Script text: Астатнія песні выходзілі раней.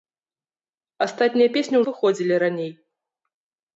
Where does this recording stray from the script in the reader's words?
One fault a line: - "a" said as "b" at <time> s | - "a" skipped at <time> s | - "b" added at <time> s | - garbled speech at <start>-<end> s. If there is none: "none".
none